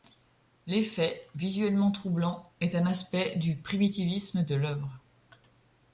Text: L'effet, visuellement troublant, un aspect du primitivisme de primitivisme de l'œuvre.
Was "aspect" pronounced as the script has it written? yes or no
yes